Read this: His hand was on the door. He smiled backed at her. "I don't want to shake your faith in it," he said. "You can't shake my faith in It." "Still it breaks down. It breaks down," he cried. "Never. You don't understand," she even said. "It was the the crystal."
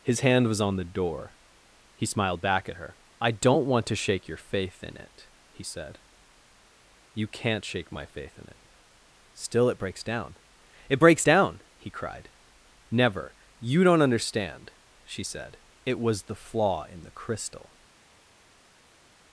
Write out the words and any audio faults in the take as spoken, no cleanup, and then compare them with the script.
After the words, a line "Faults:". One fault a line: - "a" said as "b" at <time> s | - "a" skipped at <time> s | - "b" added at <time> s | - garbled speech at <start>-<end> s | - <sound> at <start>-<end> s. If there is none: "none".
His hand was on the door. He smiled back at her. "I don't want to shake your faith in it," he said. "You can't shake my faith in It." "Still it breaks down. It breaks down," he cried. "Never. You don't understand," she said. "It was the flaw in the crystal."
Faults:
- "backed" said as "back" at 2.4 s
- "even" skipped at 15.2 s
- "flaw in" added at 16.4 s